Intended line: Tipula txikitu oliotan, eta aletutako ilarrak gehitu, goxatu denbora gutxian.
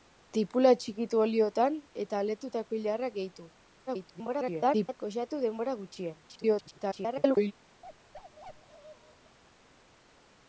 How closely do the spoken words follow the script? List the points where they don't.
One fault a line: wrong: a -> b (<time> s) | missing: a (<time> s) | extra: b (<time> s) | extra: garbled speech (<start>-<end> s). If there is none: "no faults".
extra: garbled speech (3.9-5.0 s)
extra: garbled speech (6.3-7.5 s)